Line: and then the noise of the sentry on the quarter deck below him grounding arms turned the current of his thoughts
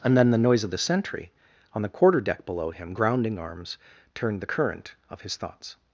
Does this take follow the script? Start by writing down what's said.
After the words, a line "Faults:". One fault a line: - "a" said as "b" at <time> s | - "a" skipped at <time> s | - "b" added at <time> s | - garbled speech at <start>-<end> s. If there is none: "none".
and then the noise of the sentry on the quarter deck below him grounding arms turned the current of his thoughts
Faults:
none